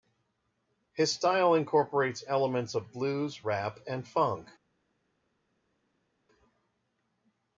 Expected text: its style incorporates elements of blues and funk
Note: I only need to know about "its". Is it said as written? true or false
false